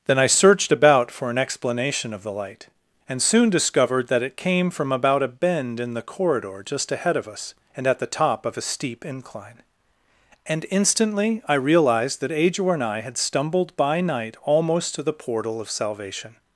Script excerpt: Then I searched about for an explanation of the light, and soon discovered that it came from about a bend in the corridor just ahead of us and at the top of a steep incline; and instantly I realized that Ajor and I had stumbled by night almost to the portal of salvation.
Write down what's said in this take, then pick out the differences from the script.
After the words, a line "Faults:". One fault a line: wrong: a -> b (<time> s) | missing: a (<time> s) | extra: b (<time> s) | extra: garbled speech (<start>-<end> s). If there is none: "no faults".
Then I searched about for an explanation of the light, and soon discovered that it came from about a bend in the corridor just ahead of us and at the top of a steep incline; and instantly I realized that Ajor and I had stumbled by night almost to the portal of salvation.
Faults:
no faults